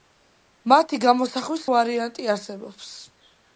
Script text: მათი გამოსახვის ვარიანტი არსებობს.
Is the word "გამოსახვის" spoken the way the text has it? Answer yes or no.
yes